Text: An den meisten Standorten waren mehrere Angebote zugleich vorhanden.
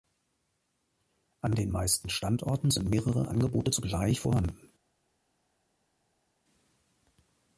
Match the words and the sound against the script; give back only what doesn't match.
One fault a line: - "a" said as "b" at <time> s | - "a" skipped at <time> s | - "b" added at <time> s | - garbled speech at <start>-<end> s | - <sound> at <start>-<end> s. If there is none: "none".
- "waren" said as "sind" at 2.7 s